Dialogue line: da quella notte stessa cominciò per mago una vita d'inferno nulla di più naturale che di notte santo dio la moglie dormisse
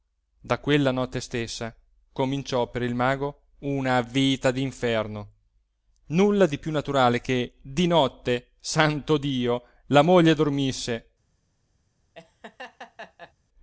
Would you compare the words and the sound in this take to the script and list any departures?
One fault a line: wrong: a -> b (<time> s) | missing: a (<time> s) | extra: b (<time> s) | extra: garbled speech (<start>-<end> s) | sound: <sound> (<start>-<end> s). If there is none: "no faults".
extra: il (2.8 s)
sound: laugh (12.1-13.3 s)